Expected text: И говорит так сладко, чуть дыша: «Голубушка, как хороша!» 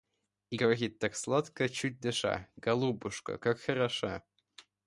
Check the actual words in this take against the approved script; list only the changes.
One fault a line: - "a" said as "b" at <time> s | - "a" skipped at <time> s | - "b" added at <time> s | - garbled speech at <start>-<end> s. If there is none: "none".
none